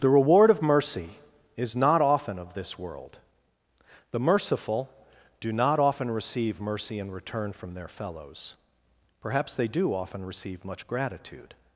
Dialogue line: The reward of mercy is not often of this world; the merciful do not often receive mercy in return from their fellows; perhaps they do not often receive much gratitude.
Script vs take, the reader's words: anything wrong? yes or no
yes